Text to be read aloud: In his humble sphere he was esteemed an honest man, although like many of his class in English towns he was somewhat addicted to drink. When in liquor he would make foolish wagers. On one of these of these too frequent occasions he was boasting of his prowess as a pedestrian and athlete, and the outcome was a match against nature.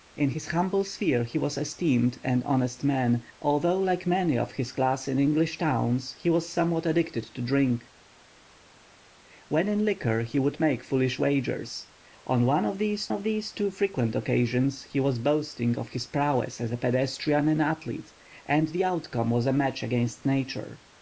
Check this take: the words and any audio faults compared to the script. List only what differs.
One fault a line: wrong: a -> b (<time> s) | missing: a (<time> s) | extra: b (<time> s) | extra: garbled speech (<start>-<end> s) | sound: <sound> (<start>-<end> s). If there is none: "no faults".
no faults